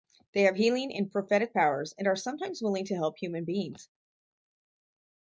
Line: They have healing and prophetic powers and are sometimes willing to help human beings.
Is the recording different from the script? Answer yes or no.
no